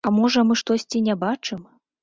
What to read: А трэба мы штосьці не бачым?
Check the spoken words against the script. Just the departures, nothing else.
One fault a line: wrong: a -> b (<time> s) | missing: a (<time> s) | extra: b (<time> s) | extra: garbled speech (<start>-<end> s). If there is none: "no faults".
wrong: трэба -> можа (0.2 s)